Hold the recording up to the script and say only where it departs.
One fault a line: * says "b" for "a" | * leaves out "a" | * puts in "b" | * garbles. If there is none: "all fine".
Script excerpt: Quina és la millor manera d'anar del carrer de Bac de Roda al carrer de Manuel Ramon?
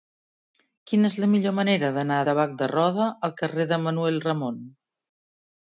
* leaves out "del carrer"